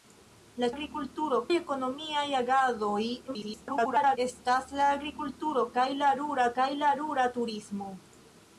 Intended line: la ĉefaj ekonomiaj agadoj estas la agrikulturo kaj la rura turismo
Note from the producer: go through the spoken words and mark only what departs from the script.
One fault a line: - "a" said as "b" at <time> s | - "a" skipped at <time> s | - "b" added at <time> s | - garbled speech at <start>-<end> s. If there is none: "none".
- "ĉefaj" said as "agrikulturo" at 0.7 s
- garbled speech at 3.3-4.2 s
- "kaj la rura" added at 6.6 s